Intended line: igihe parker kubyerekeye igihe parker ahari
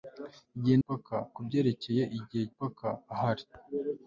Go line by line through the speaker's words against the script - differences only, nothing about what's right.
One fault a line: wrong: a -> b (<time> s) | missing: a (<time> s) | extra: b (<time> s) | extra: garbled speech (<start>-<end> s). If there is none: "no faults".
no faults